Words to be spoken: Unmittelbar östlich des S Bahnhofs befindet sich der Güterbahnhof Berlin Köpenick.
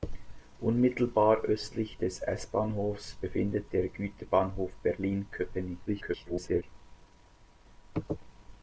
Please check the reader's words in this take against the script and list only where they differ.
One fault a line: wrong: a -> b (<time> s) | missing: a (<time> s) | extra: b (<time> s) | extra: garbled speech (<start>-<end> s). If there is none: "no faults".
missing: sich (3.7 s)
extra: garbled speech (5.9-6.6 s)